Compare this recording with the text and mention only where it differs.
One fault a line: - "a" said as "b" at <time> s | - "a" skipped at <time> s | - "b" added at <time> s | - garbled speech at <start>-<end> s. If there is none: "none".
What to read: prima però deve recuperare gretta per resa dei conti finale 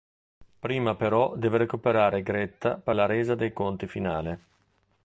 - "la" added at 2.9 s